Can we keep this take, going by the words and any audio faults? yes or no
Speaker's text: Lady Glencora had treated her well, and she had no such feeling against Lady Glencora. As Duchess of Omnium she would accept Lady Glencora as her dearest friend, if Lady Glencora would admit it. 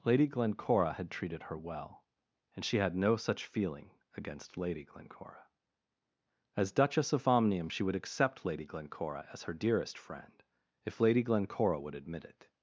yes